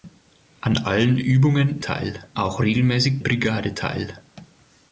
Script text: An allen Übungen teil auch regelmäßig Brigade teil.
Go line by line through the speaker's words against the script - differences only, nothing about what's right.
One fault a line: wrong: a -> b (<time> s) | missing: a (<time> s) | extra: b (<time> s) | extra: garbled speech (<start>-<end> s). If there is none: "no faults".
no faults